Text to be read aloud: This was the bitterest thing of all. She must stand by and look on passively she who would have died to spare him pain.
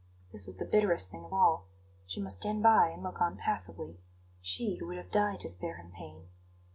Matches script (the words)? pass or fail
pass